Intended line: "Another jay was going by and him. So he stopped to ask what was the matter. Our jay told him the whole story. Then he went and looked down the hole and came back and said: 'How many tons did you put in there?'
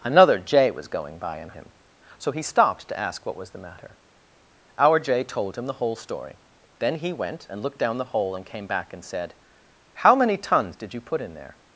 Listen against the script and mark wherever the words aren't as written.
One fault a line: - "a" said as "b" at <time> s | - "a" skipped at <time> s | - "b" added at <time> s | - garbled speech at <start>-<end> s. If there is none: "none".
none